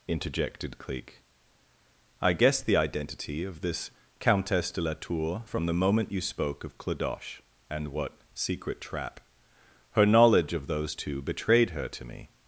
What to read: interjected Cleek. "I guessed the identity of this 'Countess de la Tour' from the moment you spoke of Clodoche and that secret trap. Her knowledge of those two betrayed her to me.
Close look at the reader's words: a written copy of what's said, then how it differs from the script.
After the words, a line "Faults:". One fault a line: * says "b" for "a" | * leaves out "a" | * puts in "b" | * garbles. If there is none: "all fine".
interjected Cleek. "I guessed the identity of this 'Countess de la Tour' from the moment you spoke of Clodoche and what secret trap. Her knowledge of those two betrayed her to me.
Faults:
* says "what" for "that"